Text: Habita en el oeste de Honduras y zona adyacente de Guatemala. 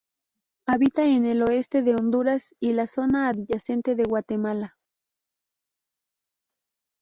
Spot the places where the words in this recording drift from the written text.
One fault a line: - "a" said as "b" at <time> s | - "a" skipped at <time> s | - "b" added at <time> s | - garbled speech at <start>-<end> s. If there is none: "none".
- "la" added at 2.7 s